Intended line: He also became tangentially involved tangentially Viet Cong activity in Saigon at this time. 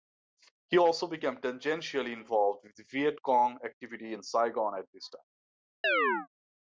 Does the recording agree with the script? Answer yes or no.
no